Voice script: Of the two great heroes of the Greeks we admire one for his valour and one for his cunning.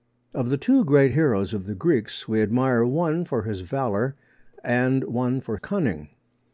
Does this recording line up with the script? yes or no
no